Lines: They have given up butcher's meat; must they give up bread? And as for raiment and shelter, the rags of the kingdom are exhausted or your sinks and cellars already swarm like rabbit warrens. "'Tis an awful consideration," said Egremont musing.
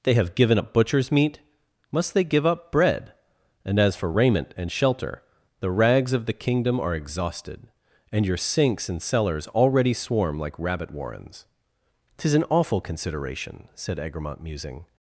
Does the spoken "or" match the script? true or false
false